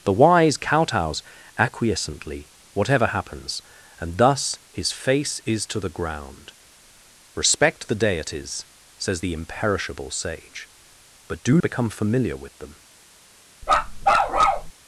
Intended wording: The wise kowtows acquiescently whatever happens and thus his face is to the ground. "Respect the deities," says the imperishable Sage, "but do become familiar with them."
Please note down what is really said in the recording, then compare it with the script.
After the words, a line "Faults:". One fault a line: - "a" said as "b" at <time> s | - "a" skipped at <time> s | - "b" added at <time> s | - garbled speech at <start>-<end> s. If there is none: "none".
The wise kowtows acquiescently whatever happens and thus his face is to the ground. "Respect the deities," says the imperishable Sage, "but do become familiar with them."
Faults:
none